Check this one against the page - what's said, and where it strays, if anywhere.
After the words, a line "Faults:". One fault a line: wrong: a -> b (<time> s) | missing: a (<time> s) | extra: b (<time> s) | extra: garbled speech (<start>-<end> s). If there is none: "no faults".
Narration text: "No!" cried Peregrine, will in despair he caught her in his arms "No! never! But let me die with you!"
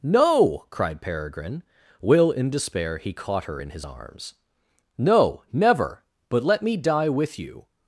"No!" cried Peregrine, will in despair he caught her in his arms "No! never! But let me die with you!"
Faults:
no faults